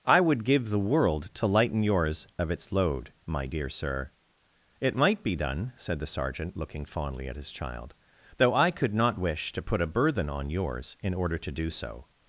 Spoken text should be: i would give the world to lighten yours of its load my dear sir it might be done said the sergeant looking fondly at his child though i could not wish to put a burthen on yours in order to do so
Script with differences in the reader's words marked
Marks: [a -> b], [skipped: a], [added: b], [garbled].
i would give the world to lighten yours of its load my dear sir it might be done said the sergeant looking fondly at his child though i could not wish to put a burthen on yours in order to do so